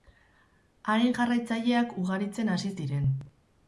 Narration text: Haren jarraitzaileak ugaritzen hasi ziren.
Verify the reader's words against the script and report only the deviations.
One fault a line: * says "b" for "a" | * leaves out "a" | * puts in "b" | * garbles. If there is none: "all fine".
all fine